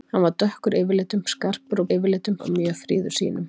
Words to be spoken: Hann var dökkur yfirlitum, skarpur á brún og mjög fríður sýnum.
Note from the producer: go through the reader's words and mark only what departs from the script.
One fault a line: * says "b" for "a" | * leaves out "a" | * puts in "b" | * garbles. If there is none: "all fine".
* says "yfirlitum" for "brún"